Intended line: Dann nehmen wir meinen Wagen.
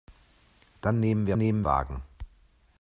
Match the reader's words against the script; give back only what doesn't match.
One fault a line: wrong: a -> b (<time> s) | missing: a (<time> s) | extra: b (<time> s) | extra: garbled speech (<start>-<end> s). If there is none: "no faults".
wrong: meinen -> nehmen (1.4 s)